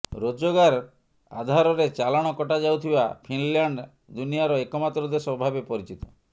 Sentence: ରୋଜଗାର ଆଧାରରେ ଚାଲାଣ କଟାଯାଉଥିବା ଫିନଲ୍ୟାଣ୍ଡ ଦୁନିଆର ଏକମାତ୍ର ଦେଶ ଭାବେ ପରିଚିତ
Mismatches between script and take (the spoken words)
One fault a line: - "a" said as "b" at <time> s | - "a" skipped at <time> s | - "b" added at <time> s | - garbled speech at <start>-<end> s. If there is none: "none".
none